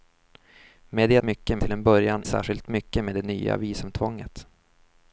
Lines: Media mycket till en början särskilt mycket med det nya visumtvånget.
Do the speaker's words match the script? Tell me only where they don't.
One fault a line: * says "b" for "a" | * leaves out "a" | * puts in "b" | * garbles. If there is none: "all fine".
all fine